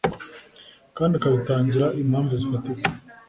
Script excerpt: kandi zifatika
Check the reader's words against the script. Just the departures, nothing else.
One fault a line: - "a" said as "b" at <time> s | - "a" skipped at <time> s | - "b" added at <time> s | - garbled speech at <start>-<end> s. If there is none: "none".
- "akabitangira impamvu" added at 1.2 s